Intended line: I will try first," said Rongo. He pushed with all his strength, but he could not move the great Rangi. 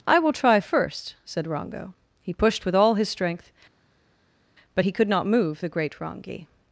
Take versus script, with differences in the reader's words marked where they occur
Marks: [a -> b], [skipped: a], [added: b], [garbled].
I will try first," said Rongo. He pushed with all his strength, but he could not move the great Rangi.